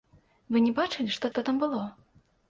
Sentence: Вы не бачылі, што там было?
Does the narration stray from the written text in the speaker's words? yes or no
yes